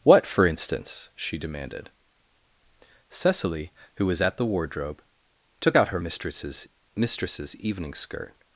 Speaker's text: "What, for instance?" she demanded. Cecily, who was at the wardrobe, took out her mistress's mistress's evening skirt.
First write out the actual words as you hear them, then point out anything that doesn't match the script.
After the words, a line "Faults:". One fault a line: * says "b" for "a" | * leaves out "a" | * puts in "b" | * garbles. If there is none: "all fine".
"What, for instance?" she demanded. Cecily, who was at the wardrobe, took out her mistress's mistress's evening skirt.
Faults:
all fine